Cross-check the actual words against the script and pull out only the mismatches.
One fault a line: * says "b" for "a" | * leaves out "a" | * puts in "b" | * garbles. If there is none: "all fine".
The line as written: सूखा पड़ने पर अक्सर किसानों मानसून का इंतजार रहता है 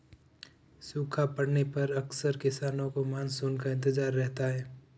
* puts in "को"